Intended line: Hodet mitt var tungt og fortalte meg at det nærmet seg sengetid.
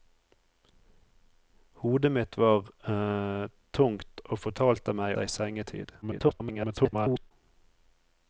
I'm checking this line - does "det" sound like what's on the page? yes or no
no